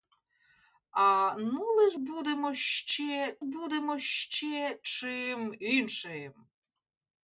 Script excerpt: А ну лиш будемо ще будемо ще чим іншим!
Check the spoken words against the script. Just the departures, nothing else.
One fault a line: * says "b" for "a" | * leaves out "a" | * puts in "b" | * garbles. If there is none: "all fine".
all fine